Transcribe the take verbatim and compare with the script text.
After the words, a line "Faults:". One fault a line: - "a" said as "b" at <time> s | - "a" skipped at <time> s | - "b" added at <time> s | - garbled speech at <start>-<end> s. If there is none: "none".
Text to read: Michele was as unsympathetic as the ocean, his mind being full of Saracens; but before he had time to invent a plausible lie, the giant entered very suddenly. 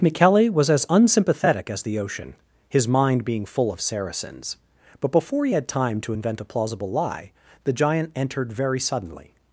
Michele was as unsympathetic as the ocean, his mind being full of Saracens; but before he had time to invent a plausible lie, the giant entered very suddenly.
Faults:
none